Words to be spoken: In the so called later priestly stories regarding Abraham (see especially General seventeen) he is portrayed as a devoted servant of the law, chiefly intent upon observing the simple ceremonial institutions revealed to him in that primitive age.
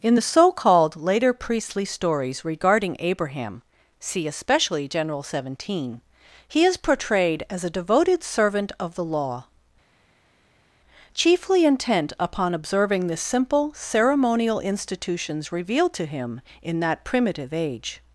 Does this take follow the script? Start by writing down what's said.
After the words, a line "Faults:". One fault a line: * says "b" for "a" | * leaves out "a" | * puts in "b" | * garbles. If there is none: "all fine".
In the so called later priestly stories regarding Abraham (see especially General seventeen) he is portrayed as a devoted servant of the law, chiefly intent upon observing the simple ceremonial institutions revealed to him in that primitive age.
Faults:
all fine